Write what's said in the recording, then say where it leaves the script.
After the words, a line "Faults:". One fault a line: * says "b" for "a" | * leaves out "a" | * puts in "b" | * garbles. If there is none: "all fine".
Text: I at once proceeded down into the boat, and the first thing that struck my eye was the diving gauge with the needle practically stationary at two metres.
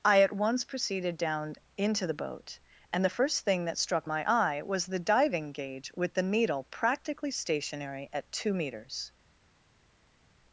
I at once proceeded down into the boat, and the first thing that struck my eye was the diving gauge with the needle practically stationary at two metres.
Faults:
all fine